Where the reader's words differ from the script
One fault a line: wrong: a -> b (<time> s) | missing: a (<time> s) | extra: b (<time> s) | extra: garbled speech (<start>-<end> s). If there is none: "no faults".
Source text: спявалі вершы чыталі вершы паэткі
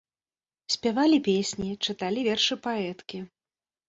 wrong: вершы -> песні (1.3 s)